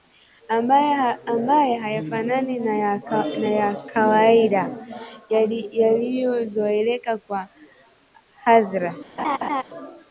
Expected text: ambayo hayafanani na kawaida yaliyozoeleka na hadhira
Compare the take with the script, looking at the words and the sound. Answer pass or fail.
fail